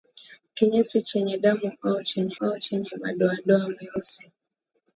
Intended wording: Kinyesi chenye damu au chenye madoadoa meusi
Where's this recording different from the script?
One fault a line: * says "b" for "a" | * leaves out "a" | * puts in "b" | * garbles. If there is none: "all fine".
* puts in "au chenye"